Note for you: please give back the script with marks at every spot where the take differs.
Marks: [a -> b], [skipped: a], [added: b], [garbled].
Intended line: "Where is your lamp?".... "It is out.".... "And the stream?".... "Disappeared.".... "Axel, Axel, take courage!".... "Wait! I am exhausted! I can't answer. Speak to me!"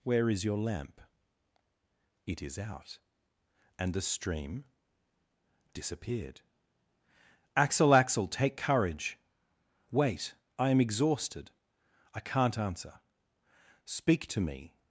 "Where is your lamp?".... "It is out.".... "And the stream?".... "Disappeared.".... "Axel, Axel, take courage!".... "Wait! I am exhausted! I can't answer. Speak to me!"